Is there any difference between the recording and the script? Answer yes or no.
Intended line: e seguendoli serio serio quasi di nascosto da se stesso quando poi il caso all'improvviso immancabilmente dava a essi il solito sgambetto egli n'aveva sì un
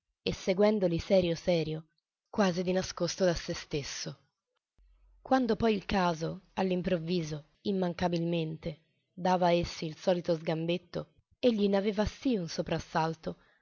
no